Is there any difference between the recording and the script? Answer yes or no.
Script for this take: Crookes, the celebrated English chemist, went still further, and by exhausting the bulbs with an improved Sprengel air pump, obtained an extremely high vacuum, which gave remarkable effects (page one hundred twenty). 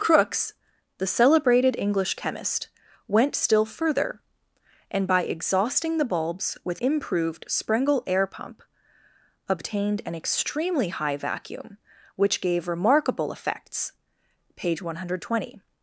yes